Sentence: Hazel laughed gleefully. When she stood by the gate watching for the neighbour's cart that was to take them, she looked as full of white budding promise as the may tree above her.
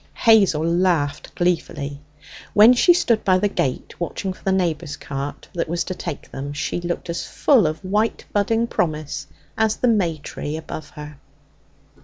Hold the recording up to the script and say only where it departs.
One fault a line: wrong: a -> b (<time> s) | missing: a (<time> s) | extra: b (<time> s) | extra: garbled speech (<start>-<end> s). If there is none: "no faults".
no faults